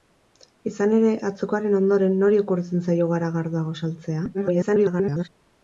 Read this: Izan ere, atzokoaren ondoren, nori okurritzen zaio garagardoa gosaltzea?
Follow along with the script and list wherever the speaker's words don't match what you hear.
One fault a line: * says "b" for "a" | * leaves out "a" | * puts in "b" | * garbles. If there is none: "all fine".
* garbles